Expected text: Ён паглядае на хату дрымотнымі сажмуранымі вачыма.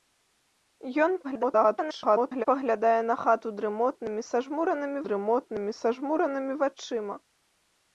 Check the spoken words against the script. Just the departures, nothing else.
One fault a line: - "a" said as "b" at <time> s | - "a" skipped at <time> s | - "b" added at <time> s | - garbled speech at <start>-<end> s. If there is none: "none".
- garbled speech at 1.2-2.5 s
- "дрымотнымі сажмуранымі" added at 5.1 s